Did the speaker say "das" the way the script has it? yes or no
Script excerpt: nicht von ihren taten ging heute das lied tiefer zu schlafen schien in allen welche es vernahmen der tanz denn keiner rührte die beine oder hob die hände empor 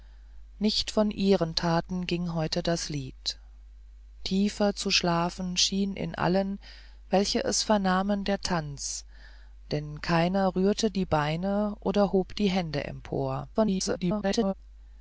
yes